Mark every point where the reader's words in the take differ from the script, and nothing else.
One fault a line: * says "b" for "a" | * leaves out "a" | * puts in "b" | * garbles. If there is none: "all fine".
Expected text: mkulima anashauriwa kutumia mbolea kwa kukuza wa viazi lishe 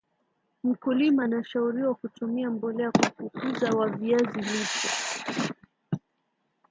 all fine